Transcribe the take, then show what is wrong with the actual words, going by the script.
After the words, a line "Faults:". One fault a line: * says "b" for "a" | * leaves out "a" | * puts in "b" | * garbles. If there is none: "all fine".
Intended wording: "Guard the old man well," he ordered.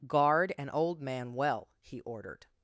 "Guard an old man well," he ordered.
Faults:
* says "an" for "the"